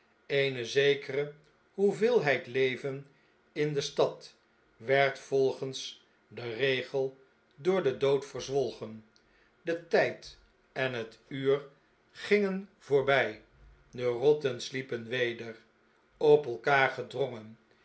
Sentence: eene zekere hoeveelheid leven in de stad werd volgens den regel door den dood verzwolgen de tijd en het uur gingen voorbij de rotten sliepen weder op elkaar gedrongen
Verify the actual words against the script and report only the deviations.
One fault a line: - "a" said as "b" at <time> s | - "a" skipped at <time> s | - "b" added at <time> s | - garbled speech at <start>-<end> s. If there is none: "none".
none